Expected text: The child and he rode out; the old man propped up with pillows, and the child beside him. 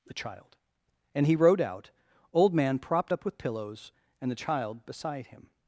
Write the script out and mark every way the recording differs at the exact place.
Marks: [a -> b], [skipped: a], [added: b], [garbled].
The child and he rode out; [skipped: the] old man propped up with pillows, and the child beside him.